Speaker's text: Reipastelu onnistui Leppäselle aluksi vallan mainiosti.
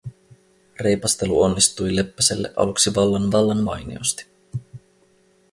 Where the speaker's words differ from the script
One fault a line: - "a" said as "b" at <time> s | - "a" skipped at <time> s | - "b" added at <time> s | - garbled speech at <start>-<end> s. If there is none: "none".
- "vallan" added at 3.3 s